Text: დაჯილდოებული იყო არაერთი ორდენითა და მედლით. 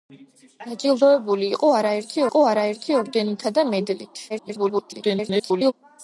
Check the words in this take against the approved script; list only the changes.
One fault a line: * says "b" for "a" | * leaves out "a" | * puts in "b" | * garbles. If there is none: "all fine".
* puts in "იყო არაერთი"
* garbles